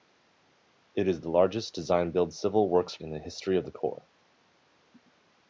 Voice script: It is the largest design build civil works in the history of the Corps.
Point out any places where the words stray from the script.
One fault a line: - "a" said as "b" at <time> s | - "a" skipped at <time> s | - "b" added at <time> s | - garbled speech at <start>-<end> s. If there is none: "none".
none